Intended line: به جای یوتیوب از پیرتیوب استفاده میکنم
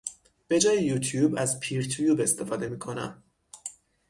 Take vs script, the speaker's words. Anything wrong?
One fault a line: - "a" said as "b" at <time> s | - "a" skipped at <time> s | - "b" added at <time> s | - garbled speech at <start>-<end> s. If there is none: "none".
none